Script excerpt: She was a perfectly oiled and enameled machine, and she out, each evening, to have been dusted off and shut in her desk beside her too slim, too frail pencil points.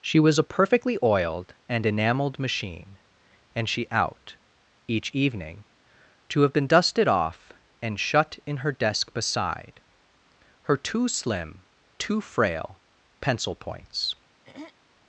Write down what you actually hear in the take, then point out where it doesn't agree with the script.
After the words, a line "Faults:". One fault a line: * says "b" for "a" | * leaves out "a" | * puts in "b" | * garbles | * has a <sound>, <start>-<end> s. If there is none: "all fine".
She was a perfectly oiled and enameled machine, and she out, each evening, to have been dusted off and shut in her desk beside her too slim, too frail pencil points.
Faults:
* has a throat clearing, 14.5-14.7 s